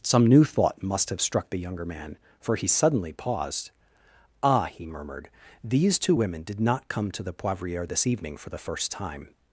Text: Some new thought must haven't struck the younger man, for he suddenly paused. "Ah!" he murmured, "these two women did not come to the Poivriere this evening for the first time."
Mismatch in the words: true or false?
true